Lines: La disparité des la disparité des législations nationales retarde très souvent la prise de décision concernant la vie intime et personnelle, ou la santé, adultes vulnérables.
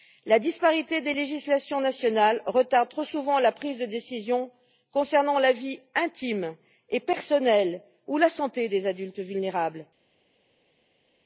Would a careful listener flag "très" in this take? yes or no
yes